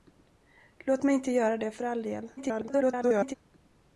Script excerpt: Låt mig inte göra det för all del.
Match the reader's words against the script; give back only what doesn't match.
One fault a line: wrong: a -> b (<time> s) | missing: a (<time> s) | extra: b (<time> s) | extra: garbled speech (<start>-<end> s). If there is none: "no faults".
extra: garbled speech (2.4-3.3 s)